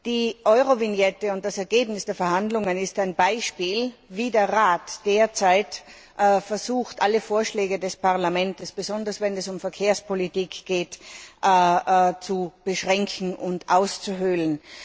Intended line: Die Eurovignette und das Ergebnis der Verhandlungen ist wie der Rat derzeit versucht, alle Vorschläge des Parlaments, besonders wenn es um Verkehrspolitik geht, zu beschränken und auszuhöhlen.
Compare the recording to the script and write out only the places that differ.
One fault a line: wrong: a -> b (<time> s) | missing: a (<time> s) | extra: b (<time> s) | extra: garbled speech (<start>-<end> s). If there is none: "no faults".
extra: ein Beispiel (3.0 s)